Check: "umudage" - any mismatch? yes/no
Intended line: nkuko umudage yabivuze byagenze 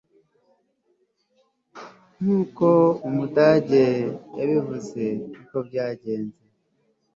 no